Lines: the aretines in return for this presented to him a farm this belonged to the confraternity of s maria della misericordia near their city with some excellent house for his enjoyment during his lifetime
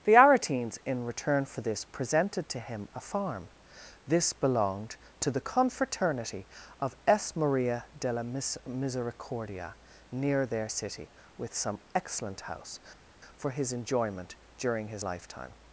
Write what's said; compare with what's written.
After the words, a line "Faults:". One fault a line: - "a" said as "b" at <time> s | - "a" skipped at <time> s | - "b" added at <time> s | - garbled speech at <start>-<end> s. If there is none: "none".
the aretines in return for this presented to him a farm this belonged to the confraternity of s maria della misericordia near their city with some excellent house for his enjoyment during his lifetime
Faults:
none